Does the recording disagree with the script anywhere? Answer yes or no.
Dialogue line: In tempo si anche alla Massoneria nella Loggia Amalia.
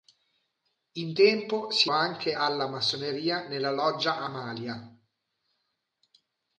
no